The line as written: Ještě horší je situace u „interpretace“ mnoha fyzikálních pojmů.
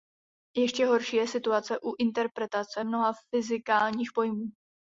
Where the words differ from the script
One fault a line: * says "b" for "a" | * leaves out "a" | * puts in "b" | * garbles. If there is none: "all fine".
all fine